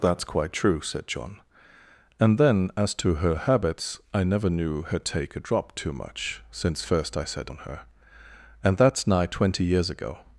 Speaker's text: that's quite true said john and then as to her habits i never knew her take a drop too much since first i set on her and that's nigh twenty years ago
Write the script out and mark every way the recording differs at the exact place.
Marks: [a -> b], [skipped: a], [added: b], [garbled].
that's quite true said john and then as to her habits i never knew her take a drop too much since first i set on her and that's nigh twenty years ago